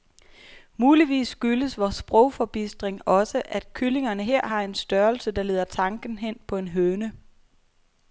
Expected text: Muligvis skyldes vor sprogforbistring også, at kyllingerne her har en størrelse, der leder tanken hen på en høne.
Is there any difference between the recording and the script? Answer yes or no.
no